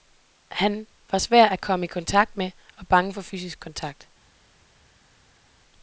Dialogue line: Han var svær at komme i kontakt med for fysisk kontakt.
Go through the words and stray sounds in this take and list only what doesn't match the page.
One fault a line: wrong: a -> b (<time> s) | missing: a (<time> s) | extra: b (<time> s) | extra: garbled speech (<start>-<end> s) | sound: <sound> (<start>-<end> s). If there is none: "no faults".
extra: og bange (2.8 s)